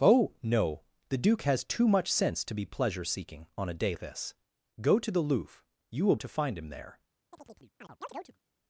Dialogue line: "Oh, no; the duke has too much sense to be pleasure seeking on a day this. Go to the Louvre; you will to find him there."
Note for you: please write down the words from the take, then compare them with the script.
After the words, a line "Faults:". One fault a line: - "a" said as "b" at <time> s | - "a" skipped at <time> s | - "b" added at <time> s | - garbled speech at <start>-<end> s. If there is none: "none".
"Oh, no; the duke has too much sense to be pleasure seeking on a day this. Go to the Louvre; you will to find him there."
Faults:
none